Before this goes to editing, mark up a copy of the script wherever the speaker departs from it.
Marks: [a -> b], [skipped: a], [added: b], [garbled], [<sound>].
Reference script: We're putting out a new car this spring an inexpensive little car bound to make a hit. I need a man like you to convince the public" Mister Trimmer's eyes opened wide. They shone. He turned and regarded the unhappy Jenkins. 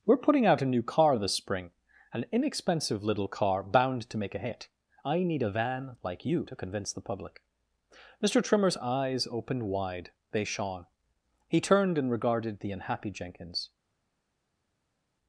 We're putting out a new car this spring an inexpensive little car bound to make a hit. I need a [man -> van] like you to convince the public" Mister Trimmer's eyes opened wide. They shone. He turned and regarded the unhappy Jenkins.